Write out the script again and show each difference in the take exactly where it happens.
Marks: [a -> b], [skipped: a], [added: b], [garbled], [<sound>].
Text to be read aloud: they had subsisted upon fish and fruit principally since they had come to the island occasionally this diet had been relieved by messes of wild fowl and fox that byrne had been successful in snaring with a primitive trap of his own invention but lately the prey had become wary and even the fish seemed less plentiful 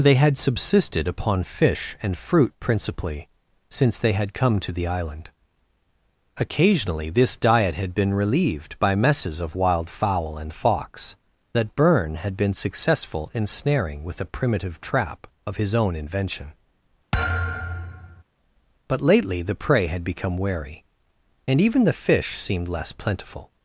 they had subsisted upon fish and fruit principally since they had come to the island occasionally this diet had been relieved by messes of wild fowl and fox that byrne had been successful in snaring with a primitive trap of his own invention [thud] but lately the prey had become wary and even the fish seemed less plentiful